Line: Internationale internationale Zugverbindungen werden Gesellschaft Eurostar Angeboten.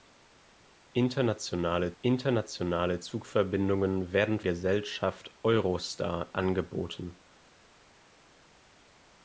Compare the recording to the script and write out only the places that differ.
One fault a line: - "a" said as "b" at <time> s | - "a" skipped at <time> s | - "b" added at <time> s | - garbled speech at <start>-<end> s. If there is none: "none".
none